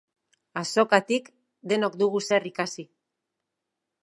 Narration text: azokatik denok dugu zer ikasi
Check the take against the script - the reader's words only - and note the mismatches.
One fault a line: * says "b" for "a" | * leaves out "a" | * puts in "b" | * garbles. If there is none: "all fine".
all fine